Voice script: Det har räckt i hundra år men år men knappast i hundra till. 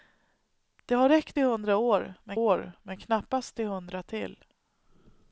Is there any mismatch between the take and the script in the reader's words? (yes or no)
no